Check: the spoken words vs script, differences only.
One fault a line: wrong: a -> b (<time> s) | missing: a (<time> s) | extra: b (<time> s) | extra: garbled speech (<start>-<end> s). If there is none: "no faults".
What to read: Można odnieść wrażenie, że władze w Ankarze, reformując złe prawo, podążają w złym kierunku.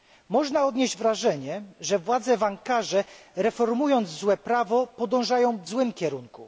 no faults